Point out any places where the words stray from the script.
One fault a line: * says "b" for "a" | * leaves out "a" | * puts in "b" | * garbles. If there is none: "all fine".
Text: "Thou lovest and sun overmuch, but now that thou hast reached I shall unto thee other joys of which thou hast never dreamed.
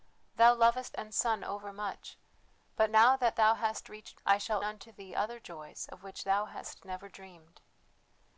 all fine